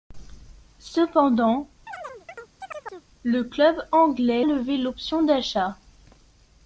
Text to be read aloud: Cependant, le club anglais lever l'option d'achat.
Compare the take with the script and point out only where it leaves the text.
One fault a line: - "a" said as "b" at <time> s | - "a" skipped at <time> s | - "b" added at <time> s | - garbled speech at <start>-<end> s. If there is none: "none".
none